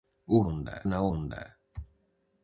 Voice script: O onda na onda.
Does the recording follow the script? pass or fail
pass